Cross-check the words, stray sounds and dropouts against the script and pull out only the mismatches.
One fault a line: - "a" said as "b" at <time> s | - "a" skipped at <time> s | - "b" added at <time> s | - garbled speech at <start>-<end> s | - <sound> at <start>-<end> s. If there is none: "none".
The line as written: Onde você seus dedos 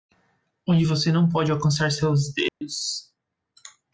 - "não pode alcançar" added at 1.1 s
- dropout at 2.5-2.6 s